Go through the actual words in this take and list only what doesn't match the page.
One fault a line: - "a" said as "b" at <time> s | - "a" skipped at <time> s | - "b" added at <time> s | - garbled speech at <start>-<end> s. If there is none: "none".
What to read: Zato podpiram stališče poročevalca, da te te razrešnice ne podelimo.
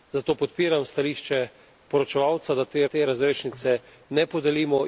none